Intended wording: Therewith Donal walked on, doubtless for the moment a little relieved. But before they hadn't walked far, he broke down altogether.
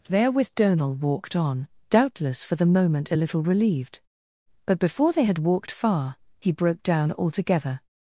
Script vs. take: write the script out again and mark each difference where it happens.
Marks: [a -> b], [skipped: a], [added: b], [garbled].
Therewith Donal walked on, doubtless for the moment a little relieved. But before they [hadn't -> had] walked far, he broke down altogether.